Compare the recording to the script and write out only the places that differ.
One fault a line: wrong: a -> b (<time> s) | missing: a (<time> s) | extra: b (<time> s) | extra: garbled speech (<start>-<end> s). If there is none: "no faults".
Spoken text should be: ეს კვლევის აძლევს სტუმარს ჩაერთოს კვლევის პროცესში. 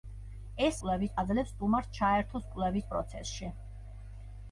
no faults